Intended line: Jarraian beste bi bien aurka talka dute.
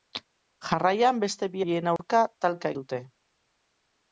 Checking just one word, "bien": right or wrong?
right